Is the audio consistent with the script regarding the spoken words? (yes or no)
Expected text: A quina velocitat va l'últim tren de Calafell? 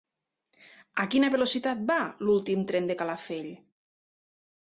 yes